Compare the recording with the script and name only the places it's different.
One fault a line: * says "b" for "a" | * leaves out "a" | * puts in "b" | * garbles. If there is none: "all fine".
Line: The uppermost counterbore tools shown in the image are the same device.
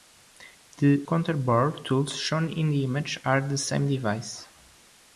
* leaves out "uppermost"